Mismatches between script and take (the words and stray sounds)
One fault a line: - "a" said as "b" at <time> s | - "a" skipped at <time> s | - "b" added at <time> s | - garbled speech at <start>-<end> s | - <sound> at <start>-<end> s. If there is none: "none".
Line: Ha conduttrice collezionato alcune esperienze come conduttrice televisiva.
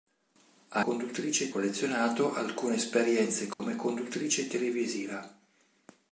- dropout at 3.5-3.6 s